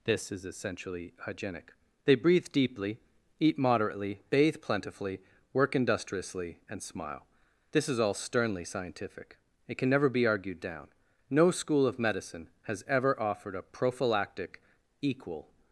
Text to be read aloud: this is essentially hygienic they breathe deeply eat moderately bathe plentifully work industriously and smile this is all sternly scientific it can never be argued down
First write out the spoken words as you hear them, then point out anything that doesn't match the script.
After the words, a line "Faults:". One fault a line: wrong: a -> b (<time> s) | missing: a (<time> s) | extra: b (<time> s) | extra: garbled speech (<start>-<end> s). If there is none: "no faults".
this is essentially hygienic they breathe deeply eat moderately bathe plentifully work industriously and smile this is all sternly scientific it can never be argued down no school of medicine has ever offered a prophylactic equal
Faults:
extra: no school of medicine has ever offered a prophylactic equal (11.3 s)